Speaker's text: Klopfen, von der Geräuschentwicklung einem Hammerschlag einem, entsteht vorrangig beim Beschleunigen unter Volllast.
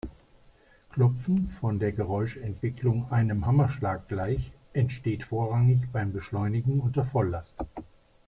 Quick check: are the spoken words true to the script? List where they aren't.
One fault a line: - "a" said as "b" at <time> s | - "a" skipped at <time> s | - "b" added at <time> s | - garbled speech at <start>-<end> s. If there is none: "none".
- "einem" said as "gleich" at 4.1 s